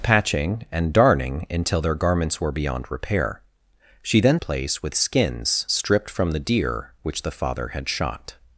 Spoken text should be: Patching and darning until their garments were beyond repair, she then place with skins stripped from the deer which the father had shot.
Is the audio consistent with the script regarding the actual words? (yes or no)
yes